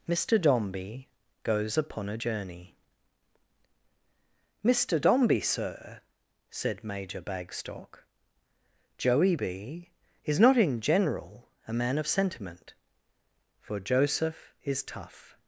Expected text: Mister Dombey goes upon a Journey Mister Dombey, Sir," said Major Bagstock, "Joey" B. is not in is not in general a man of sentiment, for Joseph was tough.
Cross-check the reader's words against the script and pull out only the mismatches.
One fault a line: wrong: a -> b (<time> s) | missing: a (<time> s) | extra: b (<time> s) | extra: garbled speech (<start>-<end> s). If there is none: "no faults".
missing: is not in (10.8 s)
wrong: was -> is (14.6 s)